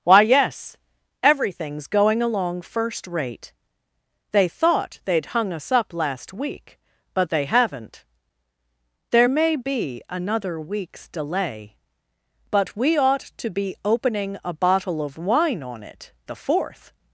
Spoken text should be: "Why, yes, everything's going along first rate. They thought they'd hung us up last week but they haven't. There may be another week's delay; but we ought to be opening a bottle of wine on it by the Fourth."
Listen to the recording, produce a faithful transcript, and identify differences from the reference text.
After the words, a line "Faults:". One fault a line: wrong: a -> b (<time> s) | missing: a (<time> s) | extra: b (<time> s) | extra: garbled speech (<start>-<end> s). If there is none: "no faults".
"Why, yes, everything's going along first rate. They thought they'd hung us up last week but they haven't. There may be another week's delay; but we ought to be opening a bottle of wine on it the Fourth."
Faults:
missing: by (16.1 s)